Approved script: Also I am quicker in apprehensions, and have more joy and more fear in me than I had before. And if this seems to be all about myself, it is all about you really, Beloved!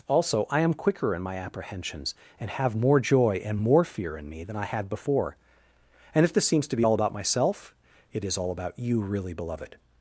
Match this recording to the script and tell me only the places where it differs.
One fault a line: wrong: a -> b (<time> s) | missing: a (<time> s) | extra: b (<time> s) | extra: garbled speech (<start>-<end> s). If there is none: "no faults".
extra: my (1.2 s)